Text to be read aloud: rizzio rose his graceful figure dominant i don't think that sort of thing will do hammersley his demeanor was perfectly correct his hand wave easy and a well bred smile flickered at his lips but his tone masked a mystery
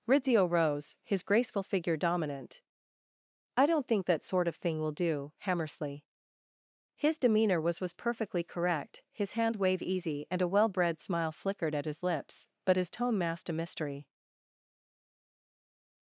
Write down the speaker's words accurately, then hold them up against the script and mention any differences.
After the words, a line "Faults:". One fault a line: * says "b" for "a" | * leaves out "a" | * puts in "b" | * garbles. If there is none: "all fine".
rizzio rose his graceful figure dominant i don't think that sort of thing will do hammersley his demeanor was was perfectly correct his hand wave easy and a well bred smile flickered at his lips but his tone masked a mystery
Faults:
* puts in "was"